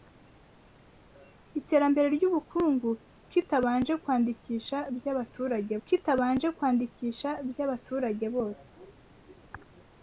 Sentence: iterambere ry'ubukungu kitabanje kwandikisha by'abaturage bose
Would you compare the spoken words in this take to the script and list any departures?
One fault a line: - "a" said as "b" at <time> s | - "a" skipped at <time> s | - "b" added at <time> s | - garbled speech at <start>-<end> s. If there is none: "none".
- "kitabanje kwandikisha by'abaturage" added at 5.9 s